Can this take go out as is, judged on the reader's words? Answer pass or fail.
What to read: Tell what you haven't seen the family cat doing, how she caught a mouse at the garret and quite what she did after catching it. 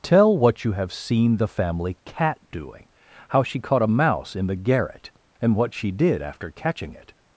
fail